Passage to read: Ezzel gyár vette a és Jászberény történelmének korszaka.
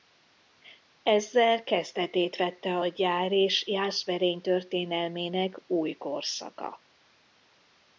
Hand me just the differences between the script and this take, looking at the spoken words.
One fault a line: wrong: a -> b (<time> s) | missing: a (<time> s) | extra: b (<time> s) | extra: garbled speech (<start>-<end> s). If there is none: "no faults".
wrong: gyár -> kezdetét (1.6 s)
extra: gyár (2.9 s)
extra: új (5.7 s)